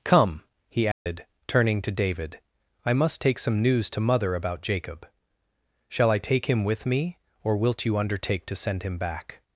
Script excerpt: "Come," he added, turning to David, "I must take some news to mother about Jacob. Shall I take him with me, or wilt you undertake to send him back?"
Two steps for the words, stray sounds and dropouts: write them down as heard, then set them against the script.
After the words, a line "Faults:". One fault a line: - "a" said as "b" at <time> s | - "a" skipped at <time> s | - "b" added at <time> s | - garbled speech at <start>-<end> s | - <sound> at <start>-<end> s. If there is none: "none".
"Come," he added, turning to David, "I must take some news to mother about Jacob. Shall I take him with me, or wilt you undertake to send him back?"
Faults:
- dropout at 0.9-1.1 s